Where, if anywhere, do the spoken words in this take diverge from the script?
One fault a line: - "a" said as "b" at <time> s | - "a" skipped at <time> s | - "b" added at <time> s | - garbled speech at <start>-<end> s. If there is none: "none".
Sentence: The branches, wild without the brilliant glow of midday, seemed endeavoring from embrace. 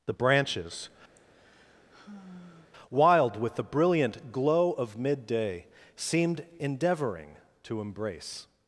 - "without" said as "with" at 3.4 s
- "from" said as "to" at 7.6 s